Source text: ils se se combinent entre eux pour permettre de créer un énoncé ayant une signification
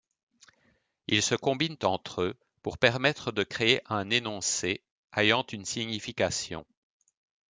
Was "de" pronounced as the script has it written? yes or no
yes